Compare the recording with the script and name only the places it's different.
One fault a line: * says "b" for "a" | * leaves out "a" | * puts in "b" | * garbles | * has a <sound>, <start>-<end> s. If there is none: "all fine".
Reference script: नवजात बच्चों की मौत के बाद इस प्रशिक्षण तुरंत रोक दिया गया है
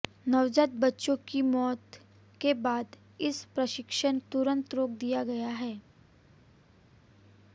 all fine